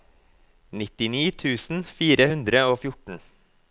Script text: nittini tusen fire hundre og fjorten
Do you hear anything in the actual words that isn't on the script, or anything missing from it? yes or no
no